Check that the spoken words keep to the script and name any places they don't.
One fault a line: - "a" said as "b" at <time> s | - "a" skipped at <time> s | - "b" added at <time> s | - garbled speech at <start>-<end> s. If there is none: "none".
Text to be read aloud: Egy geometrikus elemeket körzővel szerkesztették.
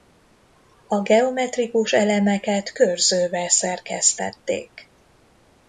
- "Egy" said as "A" at 0.9 s